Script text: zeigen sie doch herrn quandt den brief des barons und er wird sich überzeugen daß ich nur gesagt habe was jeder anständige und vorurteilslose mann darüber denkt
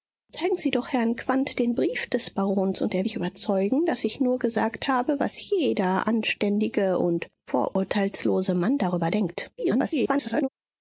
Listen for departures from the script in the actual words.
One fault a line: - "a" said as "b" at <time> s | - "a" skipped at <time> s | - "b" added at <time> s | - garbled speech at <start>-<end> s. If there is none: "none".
- "wird" skipped at 3.0 s
- garbled speech at 9.6-10.5 s